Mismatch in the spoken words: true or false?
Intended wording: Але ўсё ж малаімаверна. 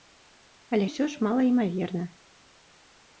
false